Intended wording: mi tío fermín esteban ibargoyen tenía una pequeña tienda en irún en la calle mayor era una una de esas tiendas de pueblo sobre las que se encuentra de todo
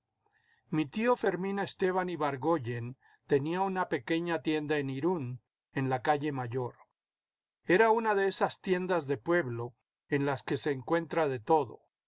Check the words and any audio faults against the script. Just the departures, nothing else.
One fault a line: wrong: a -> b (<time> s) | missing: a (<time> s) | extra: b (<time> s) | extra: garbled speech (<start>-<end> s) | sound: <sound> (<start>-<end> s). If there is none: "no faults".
missing: una (8.1 s)
wrong: sobre -> en (10.1 s)